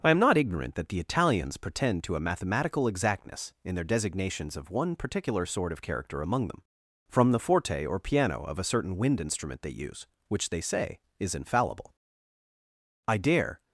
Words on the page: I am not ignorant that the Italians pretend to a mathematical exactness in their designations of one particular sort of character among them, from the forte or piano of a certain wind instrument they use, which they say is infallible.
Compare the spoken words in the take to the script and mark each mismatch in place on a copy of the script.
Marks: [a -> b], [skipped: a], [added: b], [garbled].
I am not ignorant that the Italians pretend to a mathematical exactness in their designations of one particular sort of character among them, from the forte or piano of a certain wind instrument they use, which they say is infallible. [added: I dare]